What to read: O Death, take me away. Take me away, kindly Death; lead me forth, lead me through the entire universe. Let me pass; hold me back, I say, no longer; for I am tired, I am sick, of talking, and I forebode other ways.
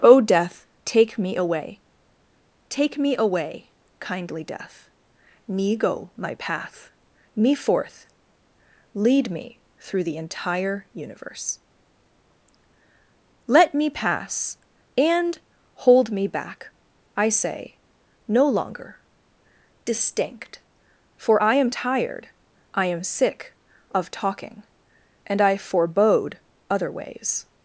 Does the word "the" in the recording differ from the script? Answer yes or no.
no